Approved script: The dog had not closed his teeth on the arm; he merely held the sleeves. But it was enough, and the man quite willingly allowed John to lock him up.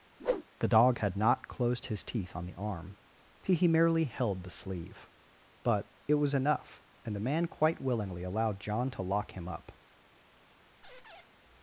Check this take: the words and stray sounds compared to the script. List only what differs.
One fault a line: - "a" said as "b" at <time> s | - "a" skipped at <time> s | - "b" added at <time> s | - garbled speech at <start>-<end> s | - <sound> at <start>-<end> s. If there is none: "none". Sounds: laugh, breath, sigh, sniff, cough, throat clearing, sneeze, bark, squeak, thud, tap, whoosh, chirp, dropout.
- whoosh at 0.2-0.4 s
- "sleeves" said as "sleeve" at 4.5 s
- squeak at 10.8-11.3 s